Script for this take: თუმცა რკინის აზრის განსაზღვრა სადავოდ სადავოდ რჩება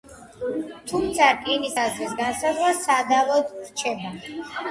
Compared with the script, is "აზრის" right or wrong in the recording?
right